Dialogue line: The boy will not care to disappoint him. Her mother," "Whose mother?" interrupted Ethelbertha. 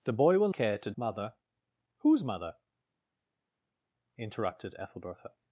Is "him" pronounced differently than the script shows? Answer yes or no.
yes